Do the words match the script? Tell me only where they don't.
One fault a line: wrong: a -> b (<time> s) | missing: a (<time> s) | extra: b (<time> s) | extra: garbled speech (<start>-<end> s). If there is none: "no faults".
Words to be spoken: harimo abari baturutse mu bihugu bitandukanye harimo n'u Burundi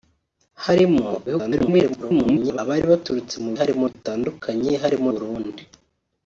extra: garbled speech (1.3-2.6 s)
wrong: bihugu -> harimo (3.6 s)
missing: n'u (5.1 s)